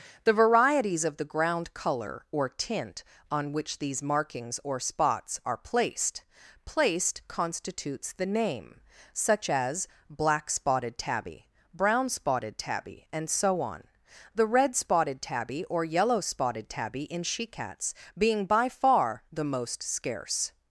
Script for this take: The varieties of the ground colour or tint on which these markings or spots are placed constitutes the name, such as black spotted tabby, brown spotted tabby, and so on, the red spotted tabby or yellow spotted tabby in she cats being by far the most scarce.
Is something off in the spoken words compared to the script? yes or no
yes